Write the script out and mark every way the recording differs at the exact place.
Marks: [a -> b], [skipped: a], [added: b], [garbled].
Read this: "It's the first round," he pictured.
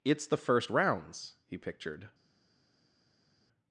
"It's the first [round," -> rounds] he pictured.